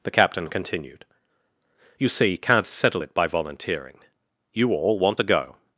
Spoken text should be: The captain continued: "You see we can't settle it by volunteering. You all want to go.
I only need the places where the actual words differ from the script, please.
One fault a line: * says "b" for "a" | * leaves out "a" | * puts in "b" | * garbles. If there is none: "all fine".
* leaves out "we"